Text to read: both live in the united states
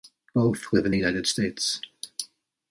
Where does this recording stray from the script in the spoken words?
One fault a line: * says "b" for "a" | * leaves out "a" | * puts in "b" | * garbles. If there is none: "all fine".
all fine